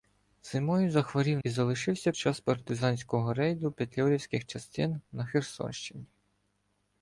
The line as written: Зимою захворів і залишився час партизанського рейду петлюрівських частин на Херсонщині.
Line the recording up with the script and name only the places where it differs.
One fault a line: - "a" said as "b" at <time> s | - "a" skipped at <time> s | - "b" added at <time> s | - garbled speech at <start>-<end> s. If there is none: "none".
none